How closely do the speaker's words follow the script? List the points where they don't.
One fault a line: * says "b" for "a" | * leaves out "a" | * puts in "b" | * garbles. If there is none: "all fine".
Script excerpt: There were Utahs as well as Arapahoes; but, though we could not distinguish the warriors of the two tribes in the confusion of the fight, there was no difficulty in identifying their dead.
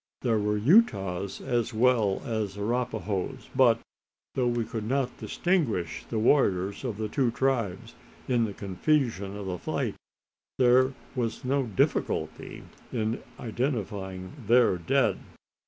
all fine